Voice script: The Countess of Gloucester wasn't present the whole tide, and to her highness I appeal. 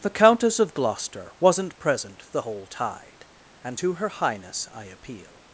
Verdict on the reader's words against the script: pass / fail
pass